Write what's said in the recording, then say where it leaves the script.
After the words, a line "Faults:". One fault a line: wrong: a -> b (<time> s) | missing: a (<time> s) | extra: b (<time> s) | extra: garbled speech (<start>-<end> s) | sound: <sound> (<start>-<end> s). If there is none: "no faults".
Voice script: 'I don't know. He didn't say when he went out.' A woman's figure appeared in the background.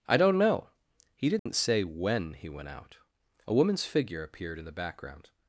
'I don't know. He didn't say when he went out.' A woman's figure appeared in the background.
Faults:
sound: dropout (1.4-1.5 s)